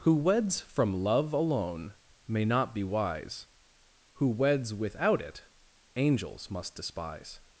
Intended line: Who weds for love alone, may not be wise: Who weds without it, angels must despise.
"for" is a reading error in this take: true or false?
true